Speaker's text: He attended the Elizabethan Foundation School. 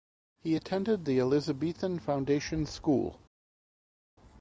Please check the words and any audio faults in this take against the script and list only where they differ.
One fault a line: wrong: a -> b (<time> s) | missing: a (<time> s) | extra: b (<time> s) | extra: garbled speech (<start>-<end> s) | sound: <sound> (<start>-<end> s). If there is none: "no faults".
no faults